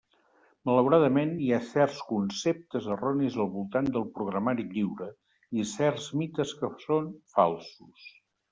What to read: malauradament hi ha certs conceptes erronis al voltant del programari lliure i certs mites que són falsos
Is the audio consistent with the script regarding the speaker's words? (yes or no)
yes